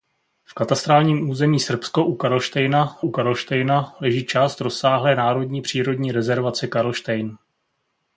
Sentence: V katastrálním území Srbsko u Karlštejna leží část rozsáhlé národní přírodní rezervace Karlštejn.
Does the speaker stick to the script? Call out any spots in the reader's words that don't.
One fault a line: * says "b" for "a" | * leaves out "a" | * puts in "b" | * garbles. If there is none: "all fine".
* puts in "u Karlštejna"